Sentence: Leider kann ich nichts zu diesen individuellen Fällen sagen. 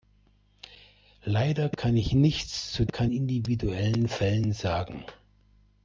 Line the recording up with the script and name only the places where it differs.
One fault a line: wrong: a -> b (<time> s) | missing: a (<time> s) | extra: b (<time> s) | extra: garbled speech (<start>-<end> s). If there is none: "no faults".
wrong: diesen -> kann (2.8 s)